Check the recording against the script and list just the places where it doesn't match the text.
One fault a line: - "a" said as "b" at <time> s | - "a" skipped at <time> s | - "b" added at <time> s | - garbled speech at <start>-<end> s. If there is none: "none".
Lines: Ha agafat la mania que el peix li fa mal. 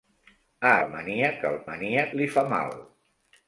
- "agafat" skipped at 0.7 s
- "peix" said as "mania" at 1.7 s